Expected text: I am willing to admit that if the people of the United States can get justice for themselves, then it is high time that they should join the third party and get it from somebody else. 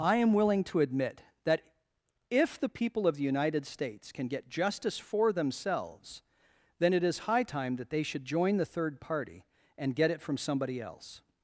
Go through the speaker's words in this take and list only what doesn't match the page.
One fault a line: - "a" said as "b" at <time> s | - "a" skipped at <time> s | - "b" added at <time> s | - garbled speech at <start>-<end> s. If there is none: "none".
none